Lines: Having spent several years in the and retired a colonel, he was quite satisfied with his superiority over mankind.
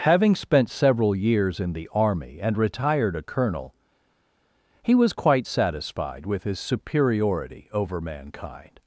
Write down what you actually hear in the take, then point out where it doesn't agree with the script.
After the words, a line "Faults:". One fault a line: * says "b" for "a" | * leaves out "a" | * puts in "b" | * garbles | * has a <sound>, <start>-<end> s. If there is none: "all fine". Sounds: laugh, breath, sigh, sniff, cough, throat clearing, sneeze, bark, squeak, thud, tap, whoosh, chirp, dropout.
Having spent several years in the army and retired a colonel, he was quite satisfied with his superiority over mankind.
Faults:
* puts in "army"